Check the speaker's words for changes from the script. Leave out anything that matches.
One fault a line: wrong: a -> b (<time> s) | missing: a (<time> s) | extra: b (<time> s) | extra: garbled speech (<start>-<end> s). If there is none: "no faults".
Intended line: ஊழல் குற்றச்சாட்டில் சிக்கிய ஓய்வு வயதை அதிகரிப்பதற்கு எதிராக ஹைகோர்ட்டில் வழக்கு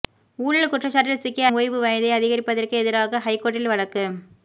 no faults